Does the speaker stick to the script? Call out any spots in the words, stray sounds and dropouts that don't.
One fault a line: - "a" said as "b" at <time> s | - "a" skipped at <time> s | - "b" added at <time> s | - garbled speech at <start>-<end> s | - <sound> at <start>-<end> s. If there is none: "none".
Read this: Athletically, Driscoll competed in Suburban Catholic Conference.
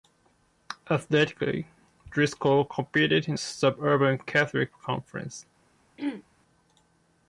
- throat clearing at 6.0-6.2 s